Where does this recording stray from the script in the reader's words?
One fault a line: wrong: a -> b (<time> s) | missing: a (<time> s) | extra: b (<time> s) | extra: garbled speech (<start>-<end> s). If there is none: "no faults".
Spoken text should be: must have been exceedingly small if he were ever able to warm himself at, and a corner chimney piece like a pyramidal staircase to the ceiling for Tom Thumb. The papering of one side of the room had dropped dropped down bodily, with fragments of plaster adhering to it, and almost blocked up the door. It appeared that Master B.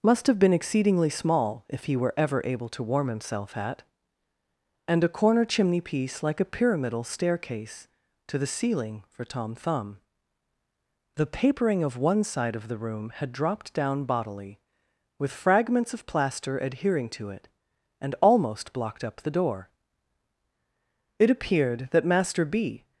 missing: dropped (13.7 s)